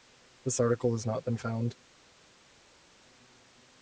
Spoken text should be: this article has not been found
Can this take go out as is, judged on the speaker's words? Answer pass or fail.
pass